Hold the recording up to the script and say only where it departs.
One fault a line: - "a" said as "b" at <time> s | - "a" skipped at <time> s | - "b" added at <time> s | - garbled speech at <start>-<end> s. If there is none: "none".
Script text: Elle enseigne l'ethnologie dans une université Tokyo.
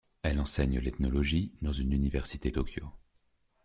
none